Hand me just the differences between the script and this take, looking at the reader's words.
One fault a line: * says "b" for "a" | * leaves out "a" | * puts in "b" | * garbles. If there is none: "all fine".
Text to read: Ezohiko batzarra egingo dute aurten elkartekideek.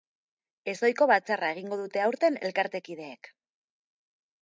all fine